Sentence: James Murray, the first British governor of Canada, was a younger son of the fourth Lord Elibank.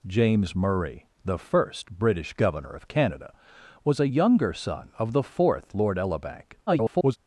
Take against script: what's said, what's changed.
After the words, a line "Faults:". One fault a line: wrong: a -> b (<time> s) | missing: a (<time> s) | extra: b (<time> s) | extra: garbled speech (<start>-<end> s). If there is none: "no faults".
James Murray, the first British governor of Canada, was a younger son of the fourth Lord Elibank. [garbled]
Faults:
extra: garbled speech (6.7-7.2 s)